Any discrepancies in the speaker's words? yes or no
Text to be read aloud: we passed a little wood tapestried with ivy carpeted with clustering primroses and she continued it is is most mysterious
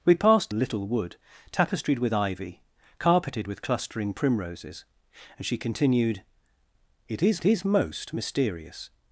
no